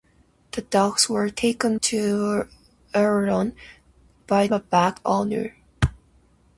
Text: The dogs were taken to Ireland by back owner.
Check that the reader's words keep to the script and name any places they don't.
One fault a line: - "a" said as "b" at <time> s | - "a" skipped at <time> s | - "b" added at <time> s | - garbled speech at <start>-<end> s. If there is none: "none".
none